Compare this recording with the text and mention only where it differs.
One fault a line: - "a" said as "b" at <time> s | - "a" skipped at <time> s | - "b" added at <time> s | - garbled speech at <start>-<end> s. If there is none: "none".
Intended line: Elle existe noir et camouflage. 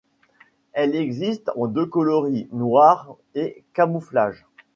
- "en deux coloris" added at 1.6 s